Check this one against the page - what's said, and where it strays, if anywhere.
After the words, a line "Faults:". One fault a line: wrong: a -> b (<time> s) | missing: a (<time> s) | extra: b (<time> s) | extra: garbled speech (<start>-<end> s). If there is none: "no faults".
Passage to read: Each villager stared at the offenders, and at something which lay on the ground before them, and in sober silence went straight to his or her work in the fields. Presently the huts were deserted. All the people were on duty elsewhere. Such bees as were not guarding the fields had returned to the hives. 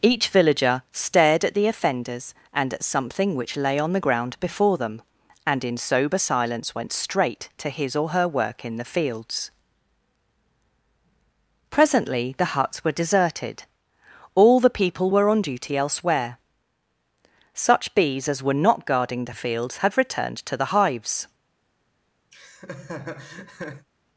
Each villager stared at the offenders, and at something which lay on the ground before them, and in sober silence went straight to his or her work in the fields. Presently the huts were deserted. All the people were on duty elsewhere. Such bees as were not guarding the fields had returned to the hives.
Faults:
no faults